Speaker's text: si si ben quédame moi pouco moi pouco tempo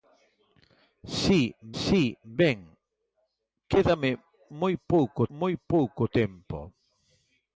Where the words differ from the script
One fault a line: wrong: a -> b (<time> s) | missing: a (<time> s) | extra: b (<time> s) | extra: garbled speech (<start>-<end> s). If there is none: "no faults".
no faults